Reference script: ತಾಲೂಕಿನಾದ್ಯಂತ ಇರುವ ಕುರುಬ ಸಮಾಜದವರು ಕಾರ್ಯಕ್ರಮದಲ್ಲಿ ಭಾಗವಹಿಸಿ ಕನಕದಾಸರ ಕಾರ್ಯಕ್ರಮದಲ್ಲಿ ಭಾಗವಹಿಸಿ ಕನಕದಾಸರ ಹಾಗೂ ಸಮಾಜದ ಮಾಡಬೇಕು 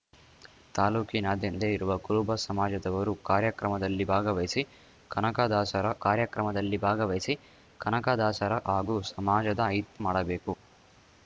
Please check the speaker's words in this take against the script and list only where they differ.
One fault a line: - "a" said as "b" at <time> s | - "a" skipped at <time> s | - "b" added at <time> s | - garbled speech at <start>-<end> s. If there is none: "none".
none